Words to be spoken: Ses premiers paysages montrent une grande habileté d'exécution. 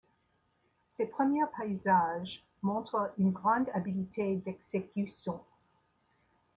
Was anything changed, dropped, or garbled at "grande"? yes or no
no